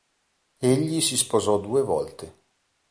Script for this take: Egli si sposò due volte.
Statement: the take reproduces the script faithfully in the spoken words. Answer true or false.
true